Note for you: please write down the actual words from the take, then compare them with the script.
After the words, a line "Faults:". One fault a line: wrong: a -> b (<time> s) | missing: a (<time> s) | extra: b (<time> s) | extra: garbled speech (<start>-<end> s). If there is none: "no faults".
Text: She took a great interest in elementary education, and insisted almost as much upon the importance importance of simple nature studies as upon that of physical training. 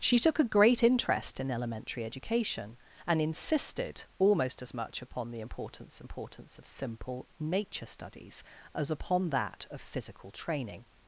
She took a great interest in elementary education, and insisted almost as much upon the importance importance of simple nature studies as upon that of physical training.
Faults:
no faults